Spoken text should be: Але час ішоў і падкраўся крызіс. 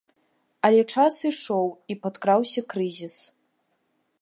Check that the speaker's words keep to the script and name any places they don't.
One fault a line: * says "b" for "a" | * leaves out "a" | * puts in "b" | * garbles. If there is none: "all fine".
all fine